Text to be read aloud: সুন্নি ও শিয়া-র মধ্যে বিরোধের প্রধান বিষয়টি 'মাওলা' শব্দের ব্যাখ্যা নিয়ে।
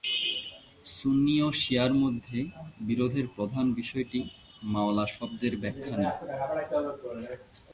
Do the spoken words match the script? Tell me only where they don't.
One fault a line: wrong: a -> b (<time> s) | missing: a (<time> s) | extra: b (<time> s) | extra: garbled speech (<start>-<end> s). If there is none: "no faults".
no faults